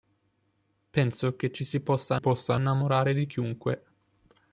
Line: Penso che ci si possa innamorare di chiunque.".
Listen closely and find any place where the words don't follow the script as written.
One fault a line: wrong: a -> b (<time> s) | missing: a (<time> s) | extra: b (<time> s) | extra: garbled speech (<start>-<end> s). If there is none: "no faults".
extra: possa (2.2 s)